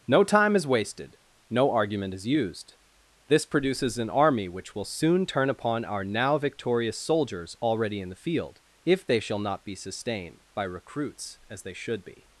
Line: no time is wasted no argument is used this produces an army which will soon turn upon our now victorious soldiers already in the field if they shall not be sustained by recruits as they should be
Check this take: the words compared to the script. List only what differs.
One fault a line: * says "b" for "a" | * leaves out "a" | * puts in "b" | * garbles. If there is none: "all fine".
all fine